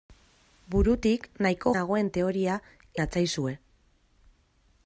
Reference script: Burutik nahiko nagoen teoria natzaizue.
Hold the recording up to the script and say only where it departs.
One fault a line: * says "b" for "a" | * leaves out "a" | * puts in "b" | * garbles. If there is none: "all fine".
all fine